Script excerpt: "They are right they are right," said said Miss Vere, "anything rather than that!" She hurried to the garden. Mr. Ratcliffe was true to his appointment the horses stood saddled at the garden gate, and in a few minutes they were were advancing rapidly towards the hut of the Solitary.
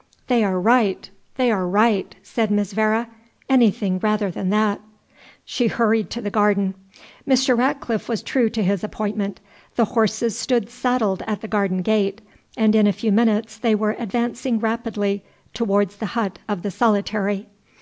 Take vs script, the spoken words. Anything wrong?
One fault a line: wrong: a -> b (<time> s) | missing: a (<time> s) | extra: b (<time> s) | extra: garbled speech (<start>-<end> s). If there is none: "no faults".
missing: said (2.5 s)
missing: were (14.0 s)